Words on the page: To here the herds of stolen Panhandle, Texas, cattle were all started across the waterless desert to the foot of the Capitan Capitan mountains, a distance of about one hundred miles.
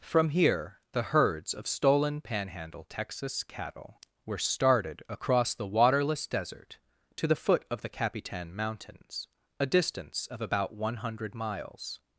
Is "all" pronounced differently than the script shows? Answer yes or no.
yes